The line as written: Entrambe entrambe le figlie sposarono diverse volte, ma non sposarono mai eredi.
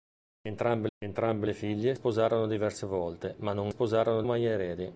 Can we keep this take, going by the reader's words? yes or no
yes